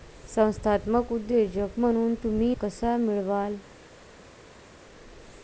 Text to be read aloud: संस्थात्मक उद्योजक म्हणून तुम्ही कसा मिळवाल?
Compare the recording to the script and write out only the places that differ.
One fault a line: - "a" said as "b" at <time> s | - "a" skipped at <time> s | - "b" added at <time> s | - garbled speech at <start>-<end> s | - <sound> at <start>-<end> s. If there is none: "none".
none